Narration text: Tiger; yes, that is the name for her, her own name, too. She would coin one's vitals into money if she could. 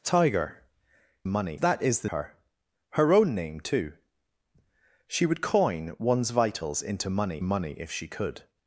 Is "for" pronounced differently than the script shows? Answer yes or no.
yes